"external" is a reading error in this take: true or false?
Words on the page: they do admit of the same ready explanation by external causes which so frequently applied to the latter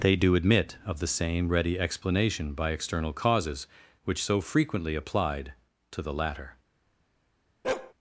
false